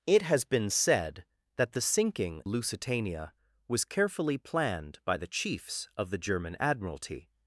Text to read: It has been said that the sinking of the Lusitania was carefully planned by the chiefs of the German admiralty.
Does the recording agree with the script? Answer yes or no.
no